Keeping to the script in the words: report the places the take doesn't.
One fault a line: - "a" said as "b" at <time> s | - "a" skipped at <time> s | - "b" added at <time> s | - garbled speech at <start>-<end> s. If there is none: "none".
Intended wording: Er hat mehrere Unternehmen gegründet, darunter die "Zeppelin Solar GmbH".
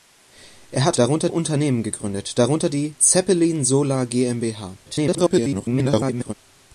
- "mehrere" said as "darunter" at 1.0 s
- garbled speech at 4.9-6.3 s